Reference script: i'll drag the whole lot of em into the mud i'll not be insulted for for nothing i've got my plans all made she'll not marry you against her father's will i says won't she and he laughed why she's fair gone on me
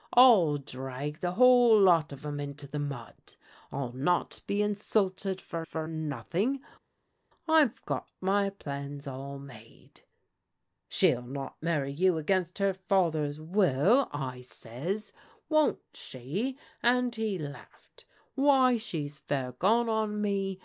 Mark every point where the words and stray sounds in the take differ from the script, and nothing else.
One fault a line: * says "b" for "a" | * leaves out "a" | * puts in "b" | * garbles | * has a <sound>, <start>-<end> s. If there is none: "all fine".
all fine